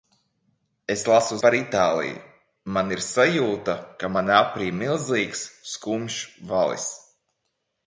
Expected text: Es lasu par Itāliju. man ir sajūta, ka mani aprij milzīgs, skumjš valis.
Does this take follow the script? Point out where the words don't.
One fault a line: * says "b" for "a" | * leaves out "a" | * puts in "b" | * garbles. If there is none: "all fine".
all fine